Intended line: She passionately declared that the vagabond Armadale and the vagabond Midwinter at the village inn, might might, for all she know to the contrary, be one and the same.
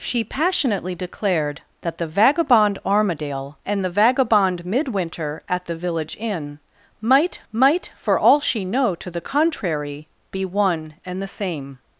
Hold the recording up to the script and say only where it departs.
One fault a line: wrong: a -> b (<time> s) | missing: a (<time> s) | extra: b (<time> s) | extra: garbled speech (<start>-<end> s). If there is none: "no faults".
no faults